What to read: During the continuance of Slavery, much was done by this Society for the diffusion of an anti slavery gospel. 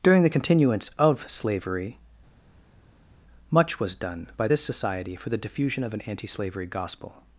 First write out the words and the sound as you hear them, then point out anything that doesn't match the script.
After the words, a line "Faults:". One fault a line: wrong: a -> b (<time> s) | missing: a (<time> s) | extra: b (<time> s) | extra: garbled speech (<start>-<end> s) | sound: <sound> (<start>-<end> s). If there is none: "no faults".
During the continuance of Slavery, much was done by this Society for the diffusion of an anti slavery gospel.
Faults:
no faults